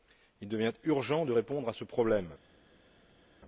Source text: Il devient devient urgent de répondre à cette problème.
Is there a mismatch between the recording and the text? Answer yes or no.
yes